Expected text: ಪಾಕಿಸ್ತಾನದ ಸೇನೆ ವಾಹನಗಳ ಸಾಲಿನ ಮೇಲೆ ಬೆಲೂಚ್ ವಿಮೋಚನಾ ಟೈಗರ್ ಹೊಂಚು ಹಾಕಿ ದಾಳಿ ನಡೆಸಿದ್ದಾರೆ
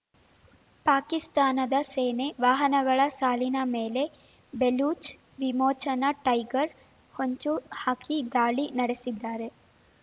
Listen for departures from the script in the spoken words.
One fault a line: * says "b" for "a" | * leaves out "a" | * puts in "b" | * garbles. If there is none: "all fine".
all fine